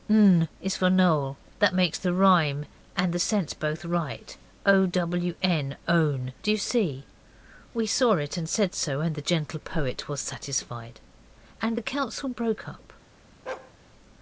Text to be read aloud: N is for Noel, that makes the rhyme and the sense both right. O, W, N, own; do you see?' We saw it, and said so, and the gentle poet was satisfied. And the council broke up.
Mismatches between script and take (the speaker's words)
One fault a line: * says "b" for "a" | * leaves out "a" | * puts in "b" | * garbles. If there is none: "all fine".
all fine